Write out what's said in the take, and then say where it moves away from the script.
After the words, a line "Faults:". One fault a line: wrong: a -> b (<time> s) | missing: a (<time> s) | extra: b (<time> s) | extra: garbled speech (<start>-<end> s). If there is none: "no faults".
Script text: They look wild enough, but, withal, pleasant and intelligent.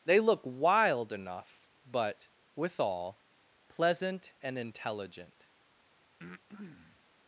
They look wild enough, but, withal, pleasant and intelligent.
Faults:
no faults